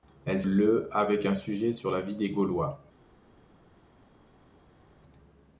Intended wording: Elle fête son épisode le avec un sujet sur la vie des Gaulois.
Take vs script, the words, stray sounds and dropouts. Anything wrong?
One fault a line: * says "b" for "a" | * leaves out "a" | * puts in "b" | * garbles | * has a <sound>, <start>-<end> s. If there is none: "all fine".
* leaves out "fête son épisode"